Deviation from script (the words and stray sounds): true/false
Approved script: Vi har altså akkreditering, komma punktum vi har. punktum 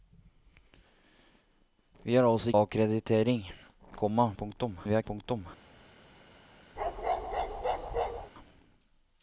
true